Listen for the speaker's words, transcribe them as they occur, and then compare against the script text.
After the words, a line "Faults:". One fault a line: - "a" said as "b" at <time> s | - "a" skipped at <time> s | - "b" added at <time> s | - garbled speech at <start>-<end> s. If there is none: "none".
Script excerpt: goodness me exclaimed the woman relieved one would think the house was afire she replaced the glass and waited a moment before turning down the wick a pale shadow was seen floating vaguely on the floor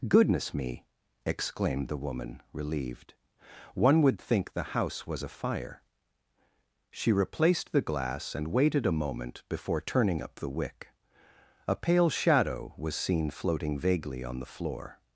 goodness me exclaimed the woman relieved one would think the house was afire she replaced the glass and waited a moment before turning up the wick a pale shadow was seen floating vaguely on the floor
Faults:
- "down" said as "up" at 10.2 s